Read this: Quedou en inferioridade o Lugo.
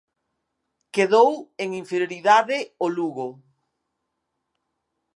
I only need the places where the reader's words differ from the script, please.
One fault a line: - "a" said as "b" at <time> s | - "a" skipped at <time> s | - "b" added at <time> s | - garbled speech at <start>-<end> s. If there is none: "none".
none